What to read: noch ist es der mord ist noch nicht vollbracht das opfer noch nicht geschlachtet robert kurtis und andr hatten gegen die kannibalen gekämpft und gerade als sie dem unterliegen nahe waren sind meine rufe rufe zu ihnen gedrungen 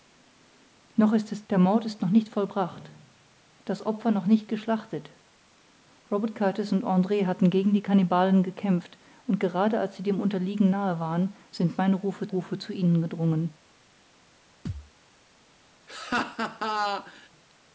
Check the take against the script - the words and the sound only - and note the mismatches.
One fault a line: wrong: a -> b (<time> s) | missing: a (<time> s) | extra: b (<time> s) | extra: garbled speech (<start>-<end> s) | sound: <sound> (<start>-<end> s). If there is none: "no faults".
sound: thud (14.7-14.9 s)
sound: laugh (15.9-17.3 s)